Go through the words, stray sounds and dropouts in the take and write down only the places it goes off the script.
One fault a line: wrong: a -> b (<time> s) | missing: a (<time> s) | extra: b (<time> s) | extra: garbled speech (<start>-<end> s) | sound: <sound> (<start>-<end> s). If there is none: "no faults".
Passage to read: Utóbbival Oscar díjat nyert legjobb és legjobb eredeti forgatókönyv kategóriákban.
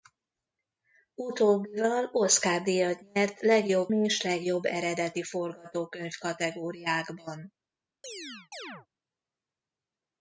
sound: chirp (8.0-8.9 s)